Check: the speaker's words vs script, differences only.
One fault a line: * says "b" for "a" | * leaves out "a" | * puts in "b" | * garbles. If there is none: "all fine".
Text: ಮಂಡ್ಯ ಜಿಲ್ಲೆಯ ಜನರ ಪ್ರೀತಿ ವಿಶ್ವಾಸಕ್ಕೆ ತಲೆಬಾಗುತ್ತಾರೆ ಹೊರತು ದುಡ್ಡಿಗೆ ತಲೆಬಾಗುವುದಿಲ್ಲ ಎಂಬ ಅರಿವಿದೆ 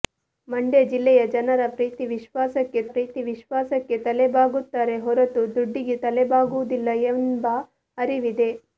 * puts in "ಪ್ರೀತಿ ವಿಶ್ವಾಸಕ್ಕೆ"